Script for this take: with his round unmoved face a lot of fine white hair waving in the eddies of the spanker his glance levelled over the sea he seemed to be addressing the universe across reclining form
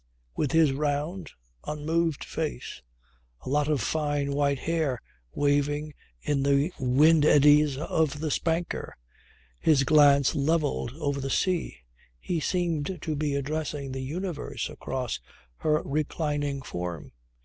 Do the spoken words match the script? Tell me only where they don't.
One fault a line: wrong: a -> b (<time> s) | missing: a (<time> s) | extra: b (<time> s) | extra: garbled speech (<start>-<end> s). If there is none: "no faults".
extra: wind (6.8 s)
extra: her (15.6 s)